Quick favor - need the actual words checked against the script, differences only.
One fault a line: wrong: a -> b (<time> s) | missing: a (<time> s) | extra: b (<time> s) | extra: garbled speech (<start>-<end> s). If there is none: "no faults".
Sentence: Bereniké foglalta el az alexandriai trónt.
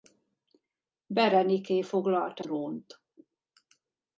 missing: el az alexandriai (2.5 s)